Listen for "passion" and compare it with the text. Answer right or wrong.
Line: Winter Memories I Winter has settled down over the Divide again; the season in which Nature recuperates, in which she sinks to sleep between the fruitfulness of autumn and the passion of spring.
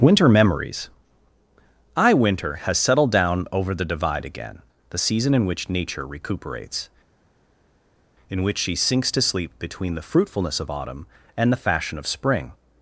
wrong